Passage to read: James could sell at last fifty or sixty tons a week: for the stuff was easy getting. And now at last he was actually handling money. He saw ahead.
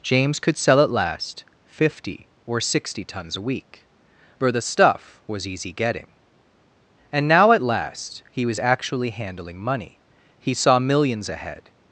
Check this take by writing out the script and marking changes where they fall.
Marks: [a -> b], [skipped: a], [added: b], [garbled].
James could sell at last fifty or sixty tons a week: for the stuff was easy getting. And now at last he was actually handling money. He saw [added: millions] ahead.